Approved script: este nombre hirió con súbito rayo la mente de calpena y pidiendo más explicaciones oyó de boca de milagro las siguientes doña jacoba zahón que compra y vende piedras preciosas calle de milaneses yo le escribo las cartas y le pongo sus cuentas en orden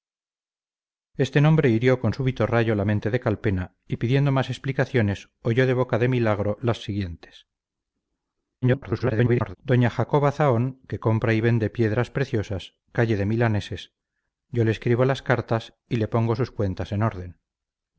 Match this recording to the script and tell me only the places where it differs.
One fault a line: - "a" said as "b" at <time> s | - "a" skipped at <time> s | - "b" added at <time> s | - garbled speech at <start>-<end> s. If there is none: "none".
- garbled speech at 8.6-9.6 s